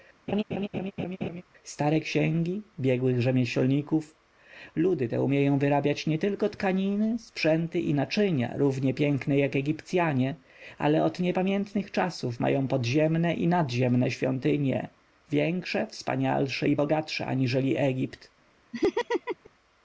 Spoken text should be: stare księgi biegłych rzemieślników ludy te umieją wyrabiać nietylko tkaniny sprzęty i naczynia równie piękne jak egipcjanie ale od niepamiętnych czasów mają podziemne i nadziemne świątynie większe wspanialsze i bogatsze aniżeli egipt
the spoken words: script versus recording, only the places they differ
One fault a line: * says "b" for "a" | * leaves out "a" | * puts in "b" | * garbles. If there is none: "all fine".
all fine